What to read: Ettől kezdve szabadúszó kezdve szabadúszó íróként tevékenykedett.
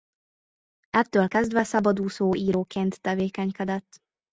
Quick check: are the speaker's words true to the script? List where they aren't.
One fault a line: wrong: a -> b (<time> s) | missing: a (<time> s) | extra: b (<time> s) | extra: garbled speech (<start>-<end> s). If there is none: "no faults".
missing: kezdve szabadúszó (2.3 s)